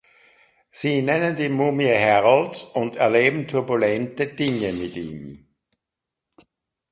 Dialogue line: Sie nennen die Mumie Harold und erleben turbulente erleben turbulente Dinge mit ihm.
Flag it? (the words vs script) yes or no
yes